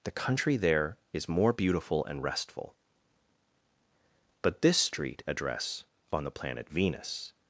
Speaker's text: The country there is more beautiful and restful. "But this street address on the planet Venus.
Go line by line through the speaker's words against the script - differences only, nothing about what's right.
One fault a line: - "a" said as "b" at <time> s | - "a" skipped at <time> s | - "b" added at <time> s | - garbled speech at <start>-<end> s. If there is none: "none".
none